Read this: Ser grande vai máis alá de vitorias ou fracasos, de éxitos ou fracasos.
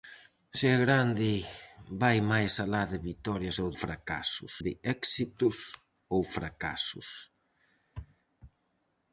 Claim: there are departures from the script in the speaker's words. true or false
false